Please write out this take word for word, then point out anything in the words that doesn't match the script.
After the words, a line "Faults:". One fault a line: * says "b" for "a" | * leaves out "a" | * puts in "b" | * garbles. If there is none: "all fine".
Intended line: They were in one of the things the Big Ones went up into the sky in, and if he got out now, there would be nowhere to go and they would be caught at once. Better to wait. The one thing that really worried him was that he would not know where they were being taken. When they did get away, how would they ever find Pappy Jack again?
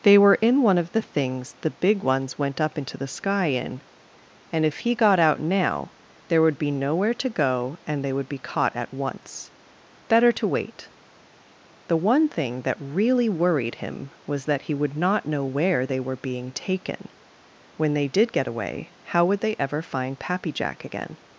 They were in one of the things the Big Ones went up into the sky in, and if he got out now, there would be nowhere to go and they would be caught at once. Better to wait. The one thing that really worried him was that he would not know where they were being taken. When they did get away, how would they ever find Pappy Jack again?
Faults:
all fine